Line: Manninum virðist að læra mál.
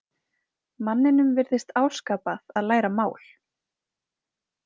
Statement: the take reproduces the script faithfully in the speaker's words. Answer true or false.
false